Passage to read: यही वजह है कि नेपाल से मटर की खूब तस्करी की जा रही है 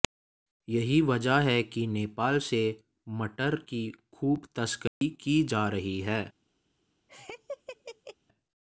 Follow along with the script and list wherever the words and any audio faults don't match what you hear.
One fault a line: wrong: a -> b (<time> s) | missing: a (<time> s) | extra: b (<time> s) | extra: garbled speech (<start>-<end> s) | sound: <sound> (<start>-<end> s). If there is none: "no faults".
sound: dropout (4.9-5.0 s)
sound: laugh (7.1-8.2 s)